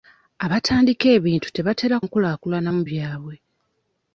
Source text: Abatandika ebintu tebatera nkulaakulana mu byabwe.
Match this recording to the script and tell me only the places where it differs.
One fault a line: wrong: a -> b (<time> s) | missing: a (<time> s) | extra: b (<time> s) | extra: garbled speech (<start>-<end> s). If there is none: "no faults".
no faults